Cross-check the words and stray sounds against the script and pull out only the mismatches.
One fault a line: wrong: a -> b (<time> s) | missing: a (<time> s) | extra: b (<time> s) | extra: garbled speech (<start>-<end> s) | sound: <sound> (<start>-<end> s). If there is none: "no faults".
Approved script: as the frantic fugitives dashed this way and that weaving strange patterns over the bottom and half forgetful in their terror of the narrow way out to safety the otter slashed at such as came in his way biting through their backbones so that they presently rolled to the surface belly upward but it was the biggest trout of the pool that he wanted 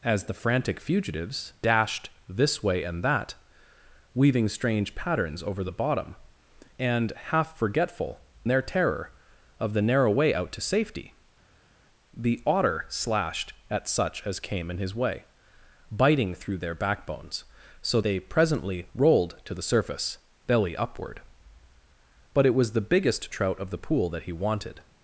missing: in (8.2 s)
missing: that (18.0 s)